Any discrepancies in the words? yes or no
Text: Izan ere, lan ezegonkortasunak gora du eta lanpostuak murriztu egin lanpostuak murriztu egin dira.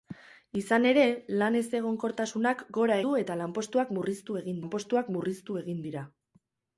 no